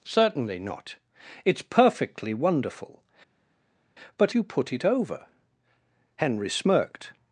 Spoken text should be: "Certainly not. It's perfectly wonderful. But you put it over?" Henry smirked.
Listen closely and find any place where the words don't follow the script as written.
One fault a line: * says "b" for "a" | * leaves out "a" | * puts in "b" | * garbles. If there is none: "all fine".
all fine